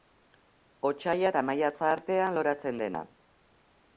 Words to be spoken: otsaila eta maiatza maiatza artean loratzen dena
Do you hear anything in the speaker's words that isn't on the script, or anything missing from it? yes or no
yes